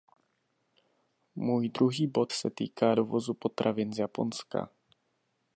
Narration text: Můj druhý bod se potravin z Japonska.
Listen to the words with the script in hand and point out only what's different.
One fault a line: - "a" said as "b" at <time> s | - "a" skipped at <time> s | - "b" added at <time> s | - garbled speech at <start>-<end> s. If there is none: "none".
- "týká dovozu" added at 2.5 s